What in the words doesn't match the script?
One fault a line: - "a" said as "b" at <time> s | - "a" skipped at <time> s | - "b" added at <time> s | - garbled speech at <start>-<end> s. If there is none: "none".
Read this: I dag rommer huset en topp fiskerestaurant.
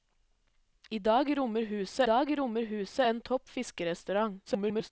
- "dag rommer huset" added at 2.0 s
- garbled speech at 4.5-4.9 s